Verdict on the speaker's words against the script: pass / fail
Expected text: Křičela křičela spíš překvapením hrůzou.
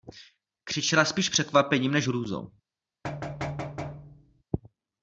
fail